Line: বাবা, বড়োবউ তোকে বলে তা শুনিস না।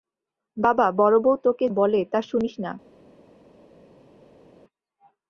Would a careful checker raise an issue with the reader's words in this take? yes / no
no